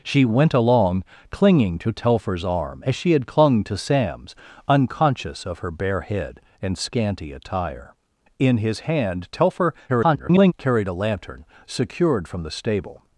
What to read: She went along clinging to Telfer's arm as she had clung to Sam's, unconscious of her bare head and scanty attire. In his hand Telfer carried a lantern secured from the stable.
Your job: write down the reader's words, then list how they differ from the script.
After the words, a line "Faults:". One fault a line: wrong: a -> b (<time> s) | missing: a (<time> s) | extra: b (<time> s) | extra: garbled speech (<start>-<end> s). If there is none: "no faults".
She went along clinging to Telfer's arm as she had clung to Sam's, unconscious of her bare head and scanty attire. In his hand Telfer [garbled] carried a lantern secured from the stable.
Faults:
extra: garbled speech (9.9-10.5 s)